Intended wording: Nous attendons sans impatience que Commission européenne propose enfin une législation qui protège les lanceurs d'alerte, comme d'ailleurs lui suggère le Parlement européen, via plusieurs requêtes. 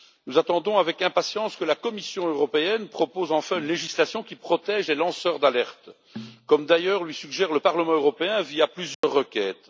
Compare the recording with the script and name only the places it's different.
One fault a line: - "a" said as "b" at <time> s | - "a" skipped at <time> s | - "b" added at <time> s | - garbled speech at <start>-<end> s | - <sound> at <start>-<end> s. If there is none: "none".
- "sans" said as "avec" at 0.8 s
- "la" added at 1.6 s
- dropout at 8.9-9.0 s